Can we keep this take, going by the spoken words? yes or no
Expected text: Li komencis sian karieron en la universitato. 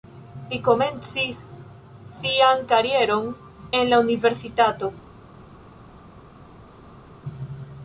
yes